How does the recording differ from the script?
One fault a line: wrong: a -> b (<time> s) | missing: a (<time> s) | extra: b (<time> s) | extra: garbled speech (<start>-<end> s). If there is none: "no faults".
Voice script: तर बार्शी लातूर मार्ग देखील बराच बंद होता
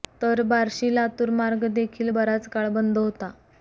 extra: काळ (2.5 s)